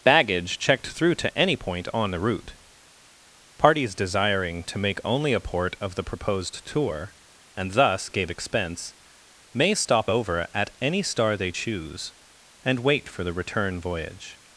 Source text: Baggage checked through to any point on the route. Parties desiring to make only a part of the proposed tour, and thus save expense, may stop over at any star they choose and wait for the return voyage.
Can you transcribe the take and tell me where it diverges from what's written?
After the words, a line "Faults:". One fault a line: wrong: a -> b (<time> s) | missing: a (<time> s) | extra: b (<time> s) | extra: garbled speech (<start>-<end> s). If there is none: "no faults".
Baggage checked through to any point on the route. Parties desiring to make only a port of the proposed tour, and thus gave expense, may stop over at any star they choose and wait for the return voyage.
Faults:
wrong: part -> port (5.4 s)
wrong: save -> gave (8.1 s)